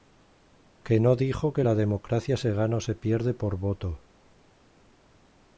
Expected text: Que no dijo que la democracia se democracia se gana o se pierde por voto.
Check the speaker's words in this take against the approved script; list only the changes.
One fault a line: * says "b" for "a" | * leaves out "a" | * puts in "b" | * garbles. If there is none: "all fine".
* leaves out "democracia se"